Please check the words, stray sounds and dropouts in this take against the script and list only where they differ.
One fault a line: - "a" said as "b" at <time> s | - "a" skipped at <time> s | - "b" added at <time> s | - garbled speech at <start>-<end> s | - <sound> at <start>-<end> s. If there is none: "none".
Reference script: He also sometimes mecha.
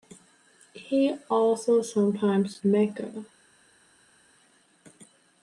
none